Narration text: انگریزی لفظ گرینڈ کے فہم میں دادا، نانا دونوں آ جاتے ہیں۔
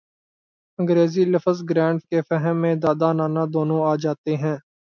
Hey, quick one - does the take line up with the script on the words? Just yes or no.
yes